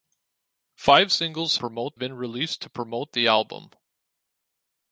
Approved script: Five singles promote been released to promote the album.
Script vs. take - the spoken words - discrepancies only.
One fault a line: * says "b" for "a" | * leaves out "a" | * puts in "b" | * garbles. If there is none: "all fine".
all fine